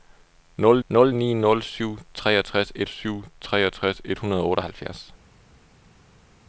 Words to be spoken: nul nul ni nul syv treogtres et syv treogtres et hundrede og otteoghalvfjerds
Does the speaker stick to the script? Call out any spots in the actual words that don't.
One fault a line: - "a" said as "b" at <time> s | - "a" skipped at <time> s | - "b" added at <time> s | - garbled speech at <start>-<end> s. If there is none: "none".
none